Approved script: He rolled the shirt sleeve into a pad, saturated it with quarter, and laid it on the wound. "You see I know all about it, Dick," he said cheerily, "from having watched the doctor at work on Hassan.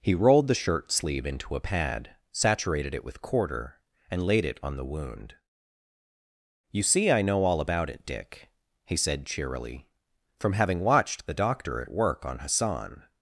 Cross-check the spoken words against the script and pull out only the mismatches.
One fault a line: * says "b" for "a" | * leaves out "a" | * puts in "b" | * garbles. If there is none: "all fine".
all fine